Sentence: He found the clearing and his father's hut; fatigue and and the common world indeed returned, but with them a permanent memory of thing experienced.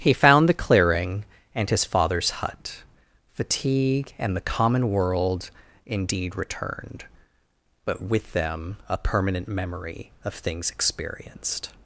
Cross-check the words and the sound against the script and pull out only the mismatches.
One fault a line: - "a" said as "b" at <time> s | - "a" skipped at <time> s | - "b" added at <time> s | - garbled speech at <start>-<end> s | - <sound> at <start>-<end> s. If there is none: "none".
- "and" skipped at 4.3 s
- "thing" said as "things" at 10.3 s